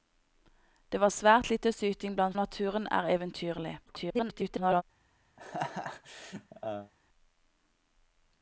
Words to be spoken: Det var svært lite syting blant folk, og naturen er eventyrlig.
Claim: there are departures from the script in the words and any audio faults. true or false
true